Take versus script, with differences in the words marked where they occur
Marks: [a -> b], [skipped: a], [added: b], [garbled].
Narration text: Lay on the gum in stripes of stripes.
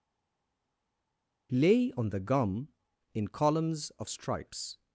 Lay on the gum in [stripes -> columns] of stripes.